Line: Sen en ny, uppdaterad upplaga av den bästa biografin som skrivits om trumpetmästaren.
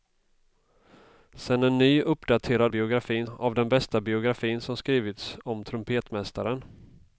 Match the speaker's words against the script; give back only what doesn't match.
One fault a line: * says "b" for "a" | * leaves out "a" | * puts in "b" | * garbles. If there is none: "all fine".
* says "biografin" for "upplaga"